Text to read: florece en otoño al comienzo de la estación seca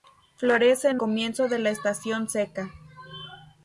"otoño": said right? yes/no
no